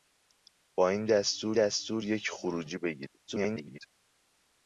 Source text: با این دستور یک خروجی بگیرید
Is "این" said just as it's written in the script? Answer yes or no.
yes